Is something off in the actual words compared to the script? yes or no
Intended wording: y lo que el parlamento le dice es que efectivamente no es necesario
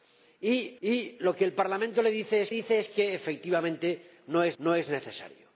yes